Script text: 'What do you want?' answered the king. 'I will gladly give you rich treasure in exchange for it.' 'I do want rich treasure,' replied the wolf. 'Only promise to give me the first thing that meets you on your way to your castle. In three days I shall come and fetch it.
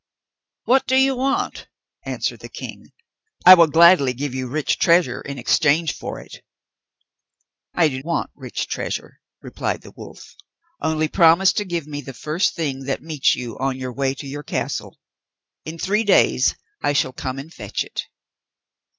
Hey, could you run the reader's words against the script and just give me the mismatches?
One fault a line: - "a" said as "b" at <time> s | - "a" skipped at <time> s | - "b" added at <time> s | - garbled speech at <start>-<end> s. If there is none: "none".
none